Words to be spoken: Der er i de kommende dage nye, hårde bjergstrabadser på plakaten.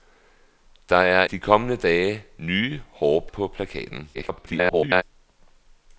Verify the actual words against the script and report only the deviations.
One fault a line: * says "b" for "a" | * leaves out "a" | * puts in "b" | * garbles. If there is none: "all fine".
* leaves out "i"
* leaves out "bjergstrabadser"
* garbles